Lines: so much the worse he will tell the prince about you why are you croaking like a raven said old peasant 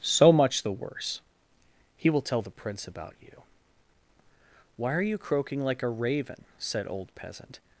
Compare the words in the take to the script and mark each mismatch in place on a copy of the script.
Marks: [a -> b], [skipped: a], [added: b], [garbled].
so much the worse he will tell the prince about you why are you croaking like a raven said old peasant